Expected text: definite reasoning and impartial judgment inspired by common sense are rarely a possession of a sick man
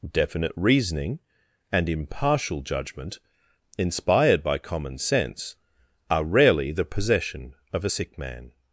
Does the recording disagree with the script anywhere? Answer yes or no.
yes